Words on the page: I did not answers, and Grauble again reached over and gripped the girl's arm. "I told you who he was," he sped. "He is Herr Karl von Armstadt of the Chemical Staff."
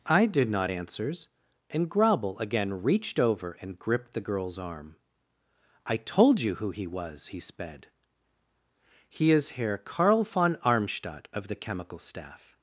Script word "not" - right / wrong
right